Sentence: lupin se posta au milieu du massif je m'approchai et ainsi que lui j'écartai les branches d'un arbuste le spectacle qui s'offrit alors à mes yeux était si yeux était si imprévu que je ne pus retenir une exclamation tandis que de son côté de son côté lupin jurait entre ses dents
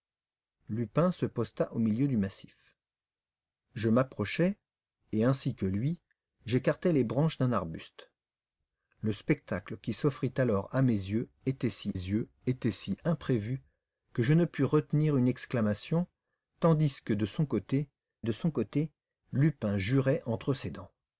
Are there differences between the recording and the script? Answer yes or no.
no